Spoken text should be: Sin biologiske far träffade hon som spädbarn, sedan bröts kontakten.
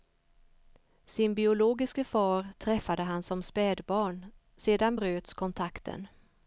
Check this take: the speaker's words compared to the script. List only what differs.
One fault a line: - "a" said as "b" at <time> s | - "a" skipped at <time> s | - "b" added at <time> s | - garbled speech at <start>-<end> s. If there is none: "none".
- "hon" said as "han" at 3.0 s